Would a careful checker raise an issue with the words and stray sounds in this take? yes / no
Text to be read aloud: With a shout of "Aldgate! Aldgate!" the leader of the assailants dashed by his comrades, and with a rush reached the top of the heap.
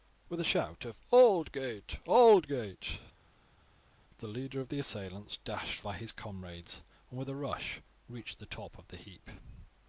no